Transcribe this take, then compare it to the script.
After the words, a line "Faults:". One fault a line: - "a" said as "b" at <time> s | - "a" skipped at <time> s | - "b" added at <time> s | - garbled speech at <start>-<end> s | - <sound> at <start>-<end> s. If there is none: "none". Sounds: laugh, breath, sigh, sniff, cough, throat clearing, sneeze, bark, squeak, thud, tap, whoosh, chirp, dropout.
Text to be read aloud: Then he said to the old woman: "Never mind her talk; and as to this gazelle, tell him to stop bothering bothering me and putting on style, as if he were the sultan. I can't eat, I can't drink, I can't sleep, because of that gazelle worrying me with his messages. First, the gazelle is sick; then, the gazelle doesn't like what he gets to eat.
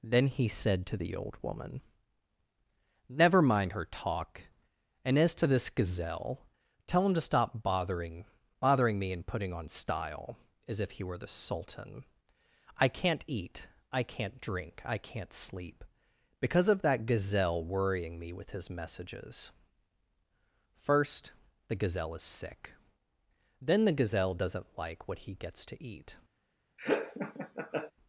Then he said to the old woman: "Never mind her talk; and as to this gazelle, tell him to stop bothering bothering me and putting on style, as if he were the sultan. I can't eat, I can't drink, I can't sleep, because of that gazelle worrying me with his messages. First, the gazelle is sick; then, the gazelle doesn't like what he gets to eat.
Faults:
- laugh at 26.8-27.9 s